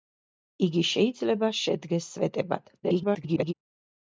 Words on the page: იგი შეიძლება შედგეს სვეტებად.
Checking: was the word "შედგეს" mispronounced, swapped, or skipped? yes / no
no